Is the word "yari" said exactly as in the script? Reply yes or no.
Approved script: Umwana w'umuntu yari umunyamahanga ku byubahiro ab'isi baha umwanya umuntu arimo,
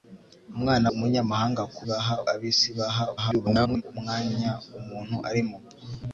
no